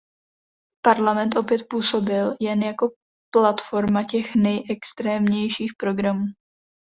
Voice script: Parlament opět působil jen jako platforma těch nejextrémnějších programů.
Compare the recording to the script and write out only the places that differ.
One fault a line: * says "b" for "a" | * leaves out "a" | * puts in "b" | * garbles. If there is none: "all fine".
all fine